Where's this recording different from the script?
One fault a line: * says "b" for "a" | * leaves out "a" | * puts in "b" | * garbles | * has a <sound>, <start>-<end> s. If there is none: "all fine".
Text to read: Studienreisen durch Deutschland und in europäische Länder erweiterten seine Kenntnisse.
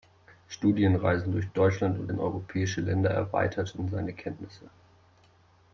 all fine